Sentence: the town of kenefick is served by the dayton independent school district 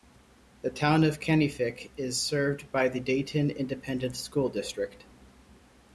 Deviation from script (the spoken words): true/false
false